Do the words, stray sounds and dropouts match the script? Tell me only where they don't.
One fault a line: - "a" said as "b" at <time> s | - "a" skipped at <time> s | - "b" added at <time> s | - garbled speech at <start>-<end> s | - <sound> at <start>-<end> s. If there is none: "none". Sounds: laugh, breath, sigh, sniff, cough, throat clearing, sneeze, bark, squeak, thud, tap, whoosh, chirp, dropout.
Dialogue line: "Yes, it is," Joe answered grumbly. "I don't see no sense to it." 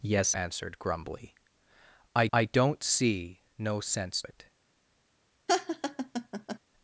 - "it is Joe" skipped at 0.3 s
- "I" added at 2.3 s
- "to" skipped at 4.2 s
- laugh at 5.5-6.6 s